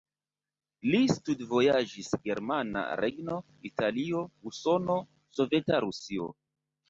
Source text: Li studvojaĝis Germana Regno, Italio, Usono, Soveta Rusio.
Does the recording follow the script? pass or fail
pass